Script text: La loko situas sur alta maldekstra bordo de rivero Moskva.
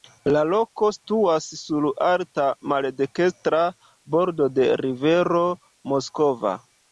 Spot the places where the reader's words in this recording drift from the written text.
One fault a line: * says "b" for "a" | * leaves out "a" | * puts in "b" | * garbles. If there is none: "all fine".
all fine